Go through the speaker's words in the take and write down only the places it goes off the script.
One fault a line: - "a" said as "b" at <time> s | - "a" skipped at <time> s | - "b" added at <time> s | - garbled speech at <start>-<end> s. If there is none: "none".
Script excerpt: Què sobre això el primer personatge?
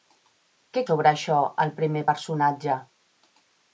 none